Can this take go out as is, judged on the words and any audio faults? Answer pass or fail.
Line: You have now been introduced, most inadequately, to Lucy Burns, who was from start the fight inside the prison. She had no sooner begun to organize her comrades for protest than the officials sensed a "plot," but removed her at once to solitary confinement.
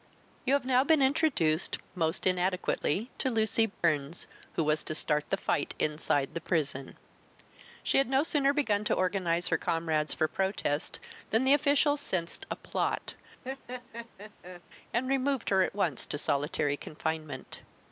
fail